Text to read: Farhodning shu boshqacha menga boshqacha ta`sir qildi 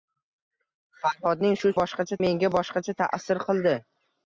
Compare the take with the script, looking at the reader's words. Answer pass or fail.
pass